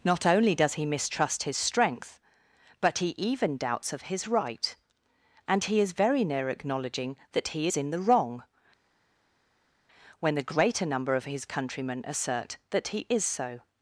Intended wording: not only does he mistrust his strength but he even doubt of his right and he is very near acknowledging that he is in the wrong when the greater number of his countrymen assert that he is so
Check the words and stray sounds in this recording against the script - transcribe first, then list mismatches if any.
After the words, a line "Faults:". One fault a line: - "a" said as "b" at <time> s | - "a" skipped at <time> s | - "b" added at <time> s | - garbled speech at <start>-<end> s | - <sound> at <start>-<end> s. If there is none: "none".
not only does he mistrust his strength but he even doubts of his right and he is very near acknowledging that he is in the wrong when the greater number of his countrymen assert that he is so
Faults:
- "doubt" said as "doubts" at 3.6 s